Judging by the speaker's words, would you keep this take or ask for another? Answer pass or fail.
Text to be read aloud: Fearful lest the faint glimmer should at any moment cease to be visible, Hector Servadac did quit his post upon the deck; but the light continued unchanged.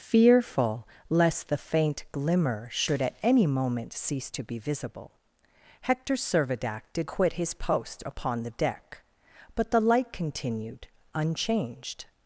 pass